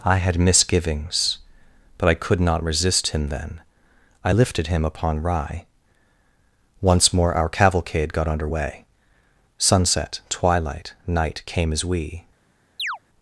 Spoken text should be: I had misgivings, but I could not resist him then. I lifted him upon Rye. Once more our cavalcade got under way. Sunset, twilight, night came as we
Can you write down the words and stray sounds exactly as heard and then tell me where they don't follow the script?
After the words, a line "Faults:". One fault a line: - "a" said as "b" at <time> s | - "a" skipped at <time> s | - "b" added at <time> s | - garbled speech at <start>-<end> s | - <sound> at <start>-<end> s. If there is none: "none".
I had misgivings, but I could not resist him then. I lifted him upon Rye. Once more our cavalcade got under way. Sunset, twilight, night came as we
Faults:
- chirp at 12.8-13.0 s